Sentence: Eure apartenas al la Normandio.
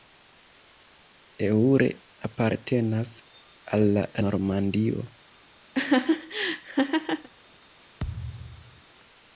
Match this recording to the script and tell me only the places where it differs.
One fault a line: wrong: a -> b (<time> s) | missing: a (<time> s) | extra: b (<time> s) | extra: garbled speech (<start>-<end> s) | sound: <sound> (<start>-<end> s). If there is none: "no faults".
sound: laugh (5.7-7.3 s)
sound: thud (8.0-8.8 s)